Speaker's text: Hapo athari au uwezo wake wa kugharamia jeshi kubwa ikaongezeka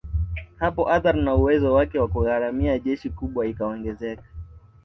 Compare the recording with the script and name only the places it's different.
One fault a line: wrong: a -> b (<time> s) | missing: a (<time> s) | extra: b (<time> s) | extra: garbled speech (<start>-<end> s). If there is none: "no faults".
wrong: au -> na (1.2 s)